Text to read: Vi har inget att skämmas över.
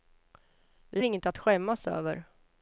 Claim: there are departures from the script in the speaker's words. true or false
true